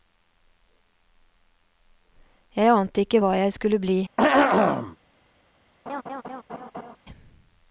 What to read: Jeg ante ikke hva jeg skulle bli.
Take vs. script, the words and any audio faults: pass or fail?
fail